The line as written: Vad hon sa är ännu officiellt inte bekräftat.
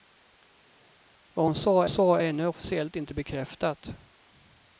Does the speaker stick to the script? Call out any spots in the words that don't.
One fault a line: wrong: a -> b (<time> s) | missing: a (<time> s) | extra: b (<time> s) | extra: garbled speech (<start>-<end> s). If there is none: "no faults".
extra: sa (1.9 s)